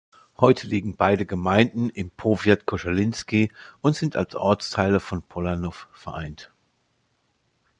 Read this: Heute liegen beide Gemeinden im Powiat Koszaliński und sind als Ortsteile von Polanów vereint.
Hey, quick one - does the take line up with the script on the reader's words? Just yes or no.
yes